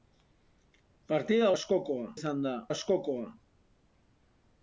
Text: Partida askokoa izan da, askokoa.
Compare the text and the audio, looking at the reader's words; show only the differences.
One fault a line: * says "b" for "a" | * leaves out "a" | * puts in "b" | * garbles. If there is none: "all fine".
all fine